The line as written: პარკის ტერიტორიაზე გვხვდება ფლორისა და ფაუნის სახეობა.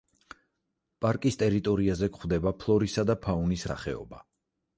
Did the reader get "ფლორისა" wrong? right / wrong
right